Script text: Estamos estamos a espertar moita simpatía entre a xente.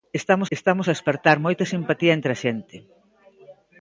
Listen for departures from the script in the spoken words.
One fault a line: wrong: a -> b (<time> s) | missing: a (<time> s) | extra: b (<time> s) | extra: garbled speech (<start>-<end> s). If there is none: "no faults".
no faults